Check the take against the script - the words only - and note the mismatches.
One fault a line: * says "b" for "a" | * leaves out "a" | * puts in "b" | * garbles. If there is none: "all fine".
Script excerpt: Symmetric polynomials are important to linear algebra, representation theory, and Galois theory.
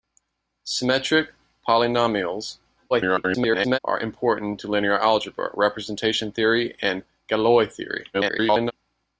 * garbles
* garbles